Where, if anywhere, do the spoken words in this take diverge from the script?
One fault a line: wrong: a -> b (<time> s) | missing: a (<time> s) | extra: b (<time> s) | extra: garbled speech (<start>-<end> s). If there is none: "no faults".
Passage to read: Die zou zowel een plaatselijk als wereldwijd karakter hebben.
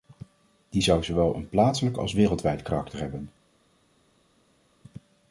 no faults